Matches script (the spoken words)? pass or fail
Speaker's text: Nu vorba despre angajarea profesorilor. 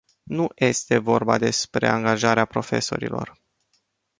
fail